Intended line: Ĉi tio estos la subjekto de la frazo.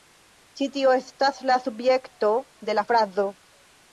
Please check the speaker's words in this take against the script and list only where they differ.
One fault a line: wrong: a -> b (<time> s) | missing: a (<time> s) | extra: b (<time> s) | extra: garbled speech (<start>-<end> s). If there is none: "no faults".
wrong: estos -> estas (1.0 s)